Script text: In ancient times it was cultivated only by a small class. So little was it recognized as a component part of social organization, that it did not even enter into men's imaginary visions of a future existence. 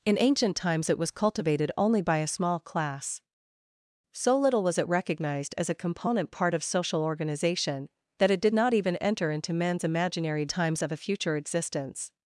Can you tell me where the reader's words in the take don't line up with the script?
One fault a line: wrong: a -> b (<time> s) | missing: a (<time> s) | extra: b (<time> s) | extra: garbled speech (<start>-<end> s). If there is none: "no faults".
wrong: visions -> times (10.5 s)